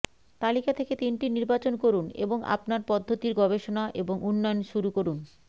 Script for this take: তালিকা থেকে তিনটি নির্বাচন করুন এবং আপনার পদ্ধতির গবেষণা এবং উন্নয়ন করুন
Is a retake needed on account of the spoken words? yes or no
yes